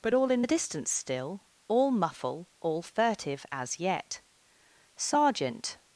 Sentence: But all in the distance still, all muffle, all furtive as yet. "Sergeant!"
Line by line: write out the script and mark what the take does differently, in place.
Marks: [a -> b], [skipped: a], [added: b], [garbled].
But all in the distance still, all muffle, all furtive as yet. "Sergeant!"